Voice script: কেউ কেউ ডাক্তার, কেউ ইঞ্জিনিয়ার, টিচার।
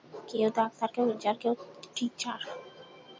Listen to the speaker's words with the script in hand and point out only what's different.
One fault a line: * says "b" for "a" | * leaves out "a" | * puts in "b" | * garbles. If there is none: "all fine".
* leaves out "কেউ"
* puts in "কেউ"